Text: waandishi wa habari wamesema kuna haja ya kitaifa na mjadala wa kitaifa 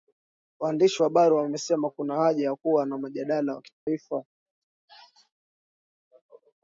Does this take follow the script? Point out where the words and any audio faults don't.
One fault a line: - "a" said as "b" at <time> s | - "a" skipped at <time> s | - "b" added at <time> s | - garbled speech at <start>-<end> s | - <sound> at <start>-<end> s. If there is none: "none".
- "kitaifa" said as "kuwa" at 2.5 s
- dropout at 3.7-3.9 s